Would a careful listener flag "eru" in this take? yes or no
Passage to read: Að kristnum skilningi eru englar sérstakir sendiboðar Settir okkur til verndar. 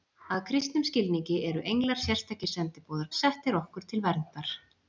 no